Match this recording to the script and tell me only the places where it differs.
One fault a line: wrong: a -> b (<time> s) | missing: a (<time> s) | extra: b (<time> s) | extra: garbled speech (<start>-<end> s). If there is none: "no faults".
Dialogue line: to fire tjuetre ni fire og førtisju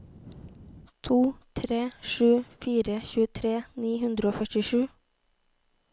extra: tre sju (1.6 s)
wrong: fire -> hundre (4.0 s)